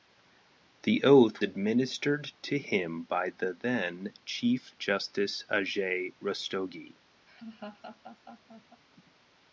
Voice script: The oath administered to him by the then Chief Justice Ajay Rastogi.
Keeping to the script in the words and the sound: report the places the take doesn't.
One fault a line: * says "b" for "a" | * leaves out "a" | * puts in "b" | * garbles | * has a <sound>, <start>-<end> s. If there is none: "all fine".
* has a laugh, 7.3-8.8 s